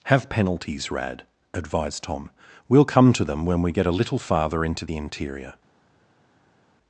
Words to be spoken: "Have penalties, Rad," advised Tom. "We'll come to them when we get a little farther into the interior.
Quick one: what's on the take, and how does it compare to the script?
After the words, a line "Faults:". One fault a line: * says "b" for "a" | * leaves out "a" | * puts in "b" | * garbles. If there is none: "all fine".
"Have penalties, Rad," advised Tom. "We'll come to them when we get a little farther into the interior.
Faults:
all fine